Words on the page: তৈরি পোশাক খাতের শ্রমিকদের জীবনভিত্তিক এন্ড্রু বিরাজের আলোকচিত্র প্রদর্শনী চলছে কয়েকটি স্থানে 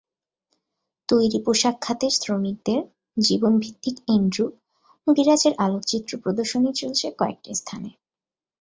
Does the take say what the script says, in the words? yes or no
yes